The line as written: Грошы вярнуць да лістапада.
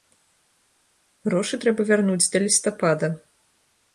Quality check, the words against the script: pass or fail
fail